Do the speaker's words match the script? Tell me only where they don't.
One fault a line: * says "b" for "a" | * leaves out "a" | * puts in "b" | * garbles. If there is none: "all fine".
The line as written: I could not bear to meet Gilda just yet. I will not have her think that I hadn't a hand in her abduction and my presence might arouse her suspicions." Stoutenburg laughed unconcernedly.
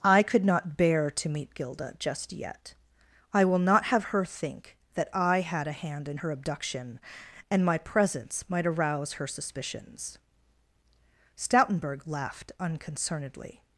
* says "had" for "hadn't"